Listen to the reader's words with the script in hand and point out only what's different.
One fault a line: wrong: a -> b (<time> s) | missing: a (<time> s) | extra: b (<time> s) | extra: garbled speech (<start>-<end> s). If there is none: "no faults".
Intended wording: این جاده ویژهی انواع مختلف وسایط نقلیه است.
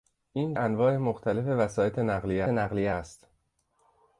missing: جاده ویژهی (0.5 s)
extra: نقلیه (2.5 s)